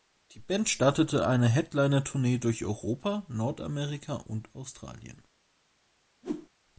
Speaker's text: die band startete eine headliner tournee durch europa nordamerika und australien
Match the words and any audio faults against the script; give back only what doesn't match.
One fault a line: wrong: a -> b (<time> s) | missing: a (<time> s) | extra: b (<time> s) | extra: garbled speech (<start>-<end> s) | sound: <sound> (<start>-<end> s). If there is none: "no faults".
sound: whoosh (6.2-6.5 s)